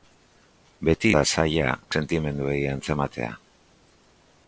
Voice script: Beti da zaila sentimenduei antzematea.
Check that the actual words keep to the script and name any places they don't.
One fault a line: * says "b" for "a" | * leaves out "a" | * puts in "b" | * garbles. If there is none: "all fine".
all fine